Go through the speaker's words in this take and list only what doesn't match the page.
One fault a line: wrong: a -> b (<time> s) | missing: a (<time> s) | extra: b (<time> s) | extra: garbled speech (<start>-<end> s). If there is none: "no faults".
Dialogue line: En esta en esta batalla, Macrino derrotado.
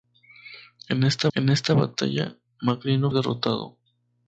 no faults